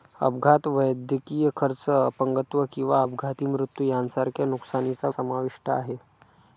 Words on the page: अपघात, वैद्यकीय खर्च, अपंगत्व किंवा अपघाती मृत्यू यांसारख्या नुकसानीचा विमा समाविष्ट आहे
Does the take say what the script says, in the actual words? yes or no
no